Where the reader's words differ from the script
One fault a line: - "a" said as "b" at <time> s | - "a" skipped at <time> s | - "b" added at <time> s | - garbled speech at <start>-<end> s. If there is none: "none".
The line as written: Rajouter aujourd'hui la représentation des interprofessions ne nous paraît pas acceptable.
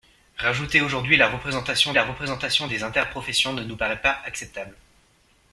- "la représentation" added at 1.9 s